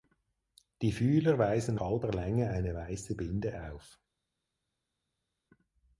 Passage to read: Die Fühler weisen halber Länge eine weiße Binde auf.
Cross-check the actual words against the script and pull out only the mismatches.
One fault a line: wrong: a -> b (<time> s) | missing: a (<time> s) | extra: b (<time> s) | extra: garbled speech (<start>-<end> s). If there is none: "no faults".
no faults